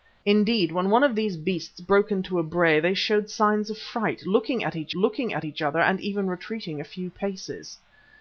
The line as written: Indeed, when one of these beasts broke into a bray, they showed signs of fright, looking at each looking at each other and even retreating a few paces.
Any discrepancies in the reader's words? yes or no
no